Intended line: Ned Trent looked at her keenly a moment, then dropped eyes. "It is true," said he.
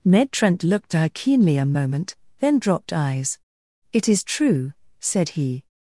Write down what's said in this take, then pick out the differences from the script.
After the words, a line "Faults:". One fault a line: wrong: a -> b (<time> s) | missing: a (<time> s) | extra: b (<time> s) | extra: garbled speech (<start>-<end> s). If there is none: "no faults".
Ned Trent looked at her keenly a moment, then dropped eyes. "It is true," said he.
Faults:
no faults